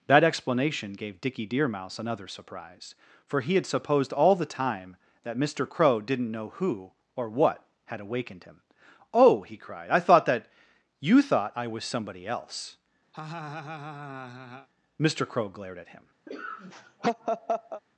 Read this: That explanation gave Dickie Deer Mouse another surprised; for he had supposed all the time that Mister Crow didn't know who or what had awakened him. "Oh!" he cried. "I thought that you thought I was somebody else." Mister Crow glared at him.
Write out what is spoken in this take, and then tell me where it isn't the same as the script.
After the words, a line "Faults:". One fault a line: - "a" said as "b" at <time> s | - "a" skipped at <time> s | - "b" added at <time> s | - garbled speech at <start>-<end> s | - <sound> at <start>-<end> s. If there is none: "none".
That explanation gave Dickie Deer Mouse another surprise; for he had supposed all the time that Mister Crow didn't know who or what had awakened him. "Oh!" he cried. "I thought that you thought I was somebody else." Mister Crow glared at him.
Faults:
- "surprised" said as "surprise" at 2.3 s
- laugh at 13.1-14.7 s
- laugh at 16.3-17.8 s